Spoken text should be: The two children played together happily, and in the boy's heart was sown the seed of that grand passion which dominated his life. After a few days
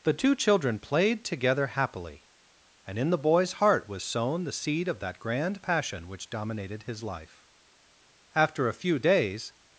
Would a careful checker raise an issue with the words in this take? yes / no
no